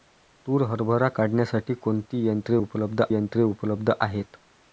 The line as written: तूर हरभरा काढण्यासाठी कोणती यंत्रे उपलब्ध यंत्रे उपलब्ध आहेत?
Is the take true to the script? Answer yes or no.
yes